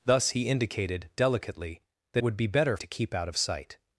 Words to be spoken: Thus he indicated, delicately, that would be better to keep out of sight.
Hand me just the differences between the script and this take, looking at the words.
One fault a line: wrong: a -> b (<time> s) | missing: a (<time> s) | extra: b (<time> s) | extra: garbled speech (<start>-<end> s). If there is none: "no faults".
no faults